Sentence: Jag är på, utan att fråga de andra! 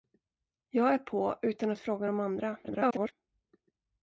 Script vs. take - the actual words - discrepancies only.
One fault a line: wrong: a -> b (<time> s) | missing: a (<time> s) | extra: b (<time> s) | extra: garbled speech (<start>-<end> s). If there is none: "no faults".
extra: garbled speech (2.6-3.1 s)